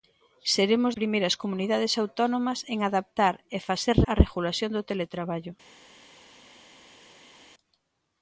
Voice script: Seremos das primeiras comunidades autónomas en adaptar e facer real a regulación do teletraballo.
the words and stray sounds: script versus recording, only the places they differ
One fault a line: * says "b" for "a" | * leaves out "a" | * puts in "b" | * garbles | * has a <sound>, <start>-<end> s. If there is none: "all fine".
* leaves out "das"
* leaves out "real"